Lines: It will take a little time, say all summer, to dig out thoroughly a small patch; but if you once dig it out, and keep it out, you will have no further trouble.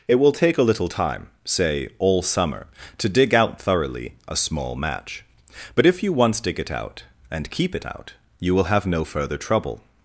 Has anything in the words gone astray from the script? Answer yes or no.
yes